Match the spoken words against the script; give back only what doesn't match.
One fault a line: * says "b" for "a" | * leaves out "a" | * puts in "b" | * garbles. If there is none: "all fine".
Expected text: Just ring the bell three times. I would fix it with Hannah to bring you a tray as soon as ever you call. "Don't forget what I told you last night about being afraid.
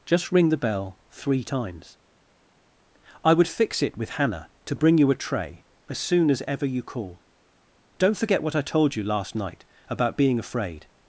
all fine